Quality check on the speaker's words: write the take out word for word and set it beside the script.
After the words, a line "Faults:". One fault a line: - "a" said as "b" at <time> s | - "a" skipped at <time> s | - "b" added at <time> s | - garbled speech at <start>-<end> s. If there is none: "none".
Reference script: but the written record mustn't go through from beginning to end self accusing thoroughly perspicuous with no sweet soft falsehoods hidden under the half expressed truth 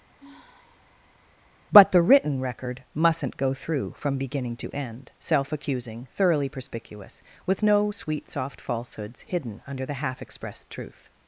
but the written record mustn't go through from beginning to end self accusing thoroughly perspicuous with no sweet soft falsehoods hidden under the half expressed truth
Faults:
none